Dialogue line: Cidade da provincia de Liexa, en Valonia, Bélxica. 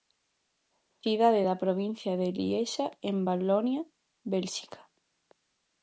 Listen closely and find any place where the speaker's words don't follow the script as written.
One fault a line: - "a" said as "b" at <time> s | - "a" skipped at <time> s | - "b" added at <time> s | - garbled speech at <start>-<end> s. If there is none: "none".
none